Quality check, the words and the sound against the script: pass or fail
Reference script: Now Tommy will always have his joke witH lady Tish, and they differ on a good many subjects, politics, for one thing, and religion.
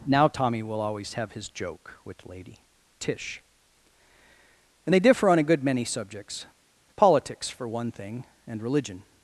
pass